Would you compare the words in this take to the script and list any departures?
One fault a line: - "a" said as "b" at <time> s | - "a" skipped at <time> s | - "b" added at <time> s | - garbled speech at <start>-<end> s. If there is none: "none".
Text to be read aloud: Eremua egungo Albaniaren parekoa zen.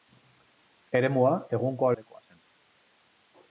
- "Albaniaren" skipped at 1.9 s